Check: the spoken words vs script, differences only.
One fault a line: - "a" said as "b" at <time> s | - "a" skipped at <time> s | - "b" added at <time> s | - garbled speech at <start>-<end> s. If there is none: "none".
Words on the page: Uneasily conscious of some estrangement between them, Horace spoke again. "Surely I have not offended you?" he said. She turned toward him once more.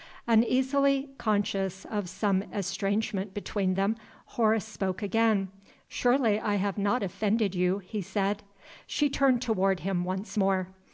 none